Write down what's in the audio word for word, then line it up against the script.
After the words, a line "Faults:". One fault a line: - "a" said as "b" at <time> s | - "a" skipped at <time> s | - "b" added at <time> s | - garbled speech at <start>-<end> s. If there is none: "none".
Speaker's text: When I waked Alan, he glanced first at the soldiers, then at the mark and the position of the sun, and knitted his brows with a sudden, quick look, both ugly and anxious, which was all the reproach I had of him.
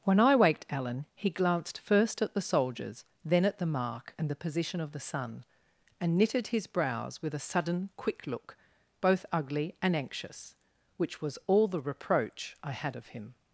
When I waked Alan, he glanced first at the soldiers, then at the mark and the position of the sun, and knitted his brows with a sudden, quick look, both ugly and anxious, which was all the reproach I had of him.
Faults:
none